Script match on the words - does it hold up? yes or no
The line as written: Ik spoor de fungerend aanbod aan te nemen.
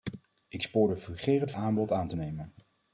yes